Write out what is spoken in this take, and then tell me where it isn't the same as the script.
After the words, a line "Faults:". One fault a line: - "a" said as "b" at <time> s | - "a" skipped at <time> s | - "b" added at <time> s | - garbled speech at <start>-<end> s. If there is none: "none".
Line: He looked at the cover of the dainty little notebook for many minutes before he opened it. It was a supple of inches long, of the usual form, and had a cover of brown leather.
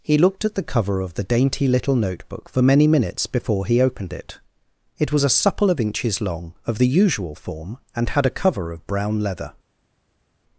He looked at the cover of the dainty little notebook for many minutes before he opened it. It was a supple of inches long, of the usual form, and had a cover of brown leather.
Faults:
none